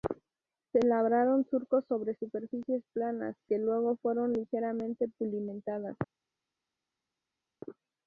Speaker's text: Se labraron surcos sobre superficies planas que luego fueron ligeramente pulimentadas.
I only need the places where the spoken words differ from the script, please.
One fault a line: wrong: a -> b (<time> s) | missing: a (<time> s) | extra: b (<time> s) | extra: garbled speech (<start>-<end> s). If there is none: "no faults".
no faults